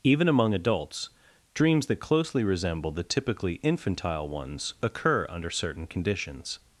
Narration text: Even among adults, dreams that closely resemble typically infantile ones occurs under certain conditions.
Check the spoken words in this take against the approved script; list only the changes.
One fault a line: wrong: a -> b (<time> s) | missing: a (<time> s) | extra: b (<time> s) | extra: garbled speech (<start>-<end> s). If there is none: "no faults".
extra: the (2.9 s)
wrong: occurs -> occur (4.8 s)